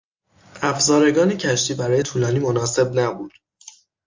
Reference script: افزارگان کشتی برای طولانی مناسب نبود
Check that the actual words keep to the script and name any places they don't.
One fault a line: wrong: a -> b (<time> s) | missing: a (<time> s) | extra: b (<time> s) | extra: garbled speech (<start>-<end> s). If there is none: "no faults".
no faults